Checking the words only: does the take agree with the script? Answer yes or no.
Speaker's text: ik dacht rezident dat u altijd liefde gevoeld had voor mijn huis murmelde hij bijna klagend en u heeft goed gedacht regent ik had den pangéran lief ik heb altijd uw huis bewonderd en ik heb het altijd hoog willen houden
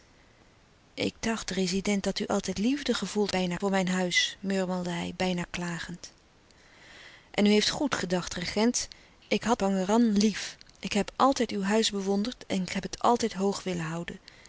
no